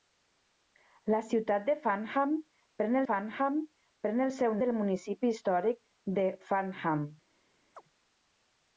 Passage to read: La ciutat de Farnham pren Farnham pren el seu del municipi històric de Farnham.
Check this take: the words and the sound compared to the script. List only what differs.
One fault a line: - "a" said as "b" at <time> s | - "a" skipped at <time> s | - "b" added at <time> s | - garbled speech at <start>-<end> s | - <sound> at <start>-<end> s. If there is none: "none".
- chirp at 7.7-7.8 s